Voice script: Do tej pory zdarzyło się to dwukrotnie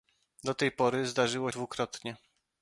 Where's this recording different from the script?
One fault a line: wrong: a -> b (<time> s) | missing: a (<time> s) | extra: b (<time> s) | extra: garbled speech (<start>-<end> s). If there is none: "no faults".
missing: się to (1.5 s)